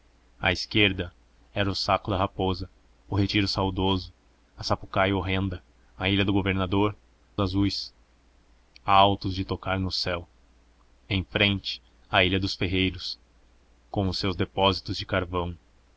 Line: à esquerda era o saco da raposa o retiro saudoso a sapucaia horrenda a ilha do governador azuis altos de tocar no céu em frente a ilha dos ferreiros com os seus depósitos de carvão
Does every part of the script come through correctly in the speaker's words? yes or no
yes